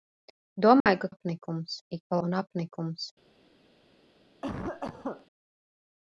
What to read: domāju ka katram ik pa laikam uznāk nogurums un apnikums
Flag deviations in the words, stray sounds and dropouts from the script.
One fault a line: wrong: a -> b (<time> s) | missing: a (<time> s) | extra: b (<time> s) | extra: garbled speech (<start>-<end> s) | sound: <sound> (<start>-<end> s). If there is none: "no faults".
sound: dropout (0.8-0.9 s)
wrong: katram -> apnikums (1.1 s)
missing: laikam uznāk nogurums (2.2 s)
sound: cough (4.4-5.3 s)